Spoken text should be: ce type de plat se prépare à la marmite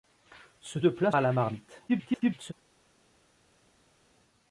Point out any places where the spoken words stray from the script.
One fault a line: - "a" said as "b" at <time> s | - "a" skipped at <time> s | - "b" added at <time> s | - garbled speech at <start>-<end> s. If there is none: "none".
- "type" skipped at 0.8 s
- "se prépare" skipped at 1.1 s
- garbled speech at 1.9-2.5 s